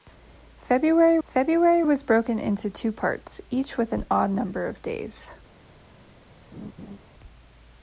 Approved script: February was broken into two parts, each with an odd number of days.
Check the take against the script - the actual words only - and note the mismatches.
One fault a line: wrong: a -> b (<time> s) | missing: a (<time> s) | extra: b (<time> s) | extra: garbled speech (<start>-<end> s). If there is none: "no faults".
extra: february (1.2 s)